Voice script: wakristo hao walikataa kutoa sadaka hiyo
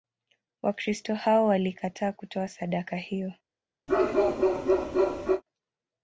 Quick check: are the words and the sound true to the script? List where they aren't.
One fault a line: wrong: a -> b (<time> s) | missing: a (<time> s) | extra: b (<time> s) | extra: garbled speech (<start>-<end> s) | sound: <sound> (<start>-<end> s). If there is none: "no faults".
sound: bark (3.9-5.4 s)